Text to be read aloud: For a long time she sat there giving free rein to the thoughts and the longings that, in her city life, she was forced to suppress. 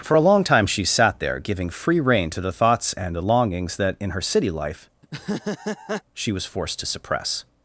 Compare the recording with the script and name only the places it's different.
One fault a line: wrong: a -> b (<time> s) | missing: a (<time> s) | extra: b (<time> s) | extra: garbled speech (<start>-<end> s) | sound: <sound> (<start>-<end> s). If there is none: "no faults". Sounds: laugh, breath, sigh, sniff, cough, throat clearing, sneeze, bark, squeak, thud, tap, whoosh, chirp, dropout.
sound: laugh (5.0-6.0 s)